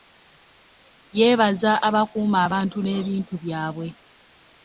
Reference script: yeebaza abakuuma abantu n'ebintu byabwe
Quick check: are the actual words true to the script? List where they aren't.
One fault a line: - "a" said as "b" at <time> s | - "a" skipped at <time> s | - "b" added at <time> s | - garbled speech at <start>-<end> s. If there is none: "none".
none